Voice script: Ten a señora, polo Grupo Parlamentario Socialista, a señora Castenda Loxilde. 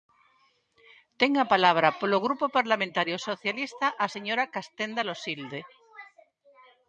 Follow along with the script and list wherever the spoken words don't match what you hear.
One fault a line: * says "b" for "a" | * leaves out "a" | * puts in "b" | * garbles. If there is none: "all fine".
* says "palabra" for "señora"